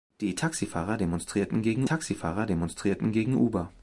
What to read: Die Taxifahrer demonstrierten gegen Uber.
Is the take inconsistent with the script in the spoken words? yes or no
yes